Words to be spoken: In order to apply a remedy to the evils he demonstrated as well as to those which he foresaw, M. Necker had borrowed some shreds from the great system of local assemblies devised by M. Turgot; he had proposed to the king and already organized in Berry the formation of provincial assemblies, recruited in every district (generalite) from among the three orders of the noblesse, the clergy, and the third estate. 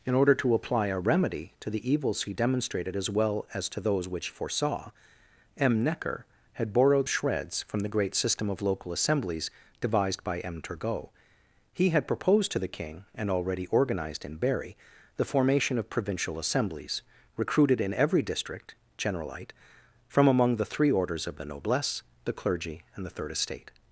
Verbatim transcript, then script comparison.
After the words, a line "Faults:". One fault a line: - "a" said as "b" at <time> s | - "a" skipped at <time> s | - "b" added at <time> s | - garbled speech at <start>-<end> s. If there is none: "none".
In order to apply a remedy to the evils he demonstrated as well as to those which foresaw, M. Necker had borrowed shreds from the great system of local assemblies devised by M. Turgot; he had proposed to the king and already organized in Berry the formation of provincial assemblies, recruited in every district (generalite) from among the three orders of the noblesse, the clergy, and the third estate.
Faults:
- "he" skipped at 4.3 s
- "some" skipped at 7.1 s